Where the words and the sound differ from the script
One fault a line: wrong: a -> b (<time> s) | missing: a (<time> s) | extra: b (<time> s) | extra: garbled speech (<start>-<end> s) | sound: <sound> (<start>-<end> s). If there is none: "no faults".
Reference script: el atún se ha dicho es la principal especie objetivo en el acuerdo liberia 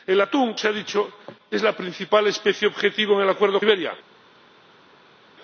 no faults